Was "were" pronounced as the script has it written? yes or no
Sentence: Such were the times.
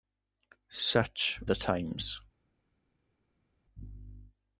no